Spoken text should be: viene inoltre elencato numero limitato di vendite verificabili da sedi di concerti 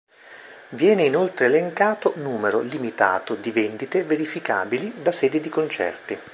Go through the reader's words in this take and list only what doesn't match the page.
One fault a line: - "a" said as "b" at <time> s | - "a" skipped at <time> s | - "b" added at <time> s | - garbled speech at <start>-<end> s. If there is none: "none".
none